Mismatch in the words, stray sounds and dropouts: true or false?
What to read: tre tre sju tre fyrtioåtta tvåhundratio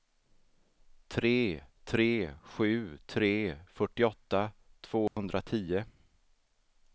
true